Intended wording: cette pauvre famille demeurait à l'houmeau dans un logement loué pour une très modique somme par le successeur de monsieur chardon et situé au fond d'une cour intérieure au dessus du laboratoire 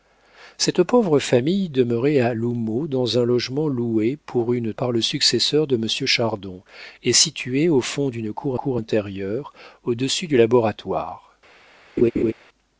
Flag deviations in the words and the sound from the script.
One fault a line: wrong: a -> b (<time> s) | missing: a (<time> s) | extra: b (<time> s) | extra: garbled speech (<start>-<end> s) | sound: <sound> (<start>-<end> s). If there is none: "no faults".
missing: très modique somme (4.7 s)
extra: cour (8.5 s)
sound: laugh (12.0-12.3 s)